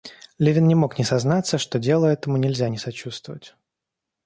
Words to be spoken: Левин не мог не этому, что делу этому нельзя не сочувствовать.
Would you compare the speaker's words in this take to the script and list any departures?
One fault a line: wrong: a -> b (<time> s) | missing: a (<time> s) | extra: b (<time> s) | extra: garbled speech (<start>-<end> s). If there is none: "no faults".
wrong: этому -> сознаться (1.0 s)